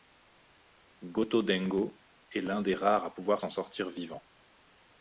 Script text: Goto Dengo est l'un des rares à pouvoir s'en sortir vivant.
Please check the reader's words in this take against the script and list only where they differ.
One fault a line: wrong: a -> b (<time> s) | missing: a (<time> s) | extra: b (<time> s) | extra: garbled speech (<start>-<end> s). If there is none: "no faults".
no faults